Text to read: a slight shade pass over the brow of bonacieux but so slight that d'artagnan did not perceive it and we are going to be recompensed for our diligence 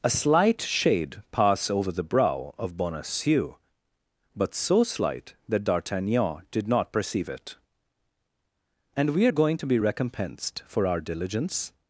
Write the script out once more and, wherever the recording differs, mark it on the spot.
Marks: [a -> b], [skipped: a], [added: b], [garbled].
a slight shade pass over the brow of bonacieux but so slight that d'artagnan did not perceive it and we are going to be recompensed for our diligence